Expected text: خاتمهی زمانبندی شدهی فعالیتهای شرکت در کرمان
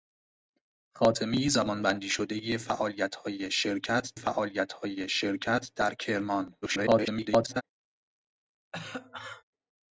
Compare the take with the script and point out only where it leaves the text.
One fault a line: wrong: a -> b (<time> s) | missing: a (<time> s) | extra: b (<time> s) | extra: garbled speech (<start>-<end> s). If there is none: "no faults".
extra: فعالیتهای شرکت (4.1 s)
extra: garbled speech (6.6-7.6 s)